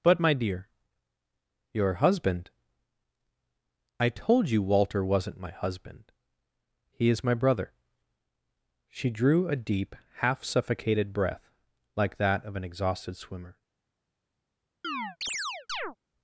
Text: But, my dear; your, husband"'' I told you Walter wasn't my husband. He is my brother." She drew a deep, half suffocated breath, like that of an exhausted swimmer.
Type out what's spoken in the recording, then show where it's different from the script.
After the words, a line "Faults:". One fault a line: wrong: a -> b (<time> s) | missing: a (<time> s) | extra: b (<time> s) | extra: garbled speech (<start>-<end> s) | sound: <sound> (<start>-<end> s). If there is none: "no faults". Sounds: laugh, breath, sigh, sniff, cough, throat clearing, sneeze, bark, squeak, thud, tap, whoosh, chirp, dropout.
But, my dear; your, husband"'' I told you Walter wasn't my husband. He is my brother." She drew a deep, half suffocated breath, like that of an exhausted swimmer.
Faults:
sound: chirp (14.8-16.0 s)